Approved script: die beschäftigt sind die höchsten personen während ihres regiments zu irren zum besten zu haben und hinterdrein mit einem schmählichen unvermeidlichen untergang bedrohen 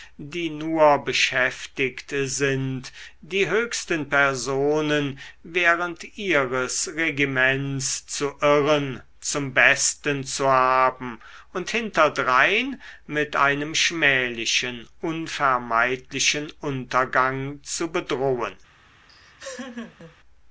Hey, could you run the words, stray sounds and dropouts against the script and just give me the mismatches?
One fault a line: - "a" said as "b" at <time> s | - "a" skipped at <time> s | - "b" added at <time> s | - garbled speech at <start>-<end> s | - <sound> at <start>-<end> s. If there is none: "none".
- "nur" added at 0.5 s
- "zu" added at 17.6 s
- laugh at 19.1-20.2 s